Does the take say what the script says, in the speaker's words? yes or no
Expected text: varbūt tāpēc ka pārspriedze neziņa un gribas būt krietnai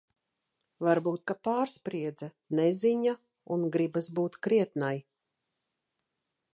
no